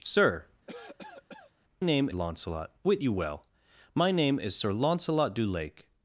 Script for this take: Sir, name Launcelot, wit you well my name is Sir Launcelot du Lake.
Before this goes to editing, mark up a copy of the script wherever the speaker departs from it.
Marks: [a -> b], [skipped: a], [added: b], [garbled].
Sir, name Launcelot, wit you well my name is Sir Launcelot du Lake.